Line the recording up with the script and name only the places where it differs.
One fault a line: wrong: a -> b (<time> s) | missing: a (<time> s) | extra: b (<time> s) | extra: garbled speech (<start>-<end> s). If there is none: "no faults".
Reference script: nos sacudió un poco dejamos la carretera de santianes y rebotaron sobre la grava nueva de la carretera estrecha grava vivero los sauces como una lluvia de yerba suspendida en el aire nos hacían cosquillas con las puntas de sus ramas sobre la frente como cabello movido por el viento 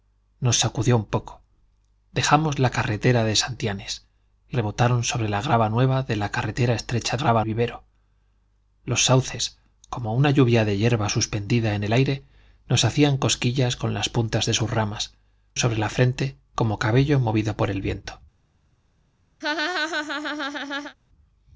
no faults